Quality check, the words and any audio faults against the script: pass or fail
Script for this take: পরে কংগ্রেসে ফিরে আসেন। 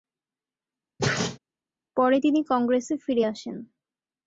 fail